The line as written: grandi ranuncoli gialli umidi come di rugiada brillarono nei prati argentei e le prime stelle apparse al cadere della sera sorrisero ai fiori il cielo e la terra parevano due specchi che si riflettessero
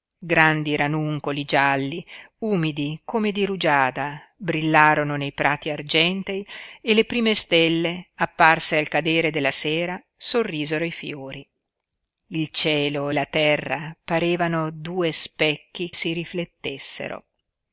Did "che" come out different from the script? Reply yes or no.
yes